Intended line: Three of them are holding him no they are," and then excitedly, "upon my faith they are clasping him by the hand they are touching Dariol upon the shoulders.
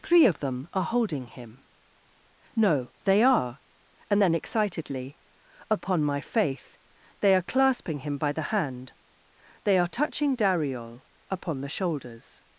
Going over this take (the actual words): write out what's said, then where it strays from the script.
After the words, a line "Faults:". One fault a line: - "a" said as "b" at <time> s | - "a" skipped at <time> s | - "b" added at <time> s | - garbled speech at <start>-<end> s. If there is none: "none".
Three of them are holding him no they are," and then excitedly, "upon my faith they are clasping him by the hand they are touching Dariol upon the shoulders.
Faults:
none